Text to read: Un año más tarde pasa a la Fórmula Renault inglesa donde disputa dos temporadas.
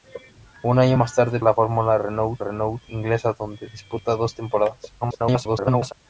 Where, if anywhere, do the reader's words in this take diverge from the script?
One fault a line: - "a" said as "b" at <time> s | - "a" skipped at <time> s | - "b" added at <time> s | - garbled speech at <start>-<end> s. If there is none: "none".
- "pasa" skipped at 1.4 s
- "Renault" added at 2.4 s
- garbled speech at 5.0-5.9 s